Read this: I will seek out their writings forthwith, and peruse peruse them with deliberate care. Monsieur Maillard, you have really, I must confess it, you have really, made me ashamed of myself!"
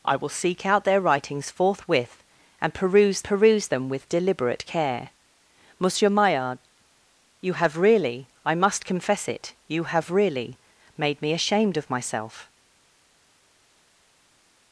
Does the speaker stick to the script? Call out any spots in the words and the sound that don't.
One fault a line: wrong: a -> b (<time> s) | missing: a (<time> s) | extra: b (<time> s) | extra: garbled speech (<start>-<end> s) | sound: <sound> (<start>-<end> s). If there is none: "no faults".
no faults